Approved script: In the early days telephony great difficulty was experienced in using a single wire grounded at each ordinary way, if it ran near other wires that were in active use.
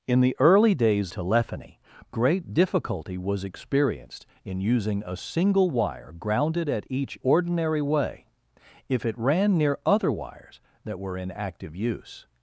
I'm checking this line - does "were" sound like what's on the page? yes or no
yes